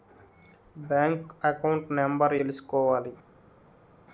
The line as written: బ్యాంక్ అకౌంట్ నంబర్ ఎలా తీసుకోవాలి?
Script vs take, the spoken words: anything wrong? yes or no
yes